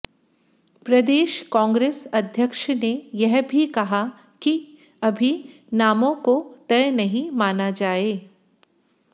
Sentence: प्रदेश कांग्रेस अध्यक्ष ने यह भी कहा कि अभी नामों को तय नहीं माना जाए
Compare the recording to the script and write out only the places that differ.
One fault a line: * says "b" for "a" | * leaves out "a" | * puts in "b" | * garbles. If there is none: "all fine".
all fine